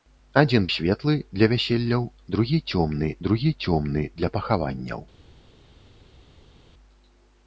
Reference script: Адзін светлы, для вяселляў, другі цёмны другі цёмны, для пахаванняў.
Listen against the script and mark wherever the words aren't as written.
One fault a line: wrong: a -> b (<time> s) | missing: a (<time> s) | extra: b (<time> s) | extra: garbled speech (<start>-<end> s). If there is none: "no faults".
no faults